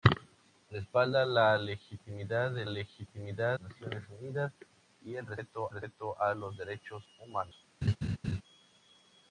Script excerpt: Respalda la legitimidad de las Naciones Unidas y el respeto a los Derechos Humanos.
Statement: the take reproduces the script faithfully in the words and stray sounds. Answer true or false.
false